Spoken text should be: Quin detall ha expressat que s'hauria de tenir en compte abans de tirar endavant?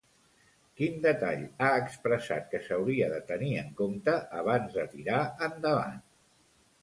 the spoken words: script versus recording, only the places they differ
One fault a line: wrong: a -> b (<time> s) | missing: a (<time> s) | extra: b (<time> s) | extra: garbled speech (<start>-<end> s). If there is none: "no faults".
no faults